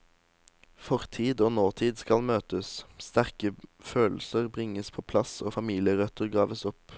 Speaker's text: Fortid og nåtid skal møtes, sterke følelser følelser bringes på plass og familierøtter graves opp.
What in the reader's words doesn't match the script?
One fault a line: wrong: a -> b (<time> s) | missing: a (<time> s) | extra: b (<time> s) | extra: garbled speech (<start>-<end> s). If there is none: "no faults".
missing: følelser (4.5 s)